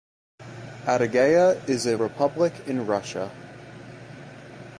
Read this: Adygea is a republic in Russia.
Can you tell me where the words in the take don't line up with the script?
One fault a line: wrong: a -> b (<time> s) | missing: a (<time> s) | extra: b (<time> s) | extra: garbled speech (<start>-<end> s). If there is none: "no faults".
no faults